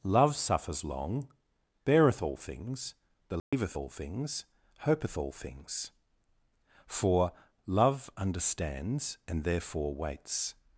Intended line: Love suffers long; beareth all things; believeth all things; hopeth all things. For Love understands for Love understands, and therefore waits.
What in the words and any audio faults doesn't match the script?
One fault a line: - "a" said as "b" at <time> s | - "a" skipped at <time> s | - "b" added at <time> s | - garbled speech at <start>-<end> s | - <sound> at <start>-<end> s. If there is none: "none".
- dropout at 3.4-3.5 s
- "for Love understands" skipped at 9.2 s